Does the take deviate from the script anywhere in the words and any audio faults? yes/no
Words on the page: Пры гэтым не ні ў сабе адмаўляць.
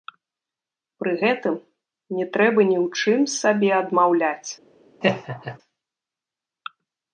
yes